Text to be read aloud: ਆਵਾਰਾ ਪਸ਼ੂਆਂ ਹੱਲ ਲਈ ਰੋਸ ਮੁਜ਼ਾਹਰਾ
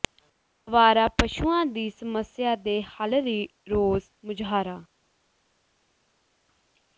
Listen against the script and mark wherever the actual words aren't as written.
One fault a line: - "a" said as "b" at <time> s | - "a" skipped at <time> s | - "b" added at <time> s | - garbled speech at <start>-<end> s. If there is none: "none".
- "ਦੀ ਸਮੱਸਿਆ ਦੇ" added at 1.6 s